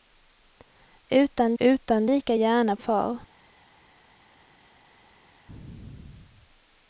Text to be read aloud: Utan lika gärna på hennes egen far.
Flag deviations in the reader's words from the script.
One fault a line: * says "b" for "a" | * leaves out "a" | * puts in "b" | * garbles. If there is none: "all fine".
* puts in "utan"
* leaves out "på hennes egen"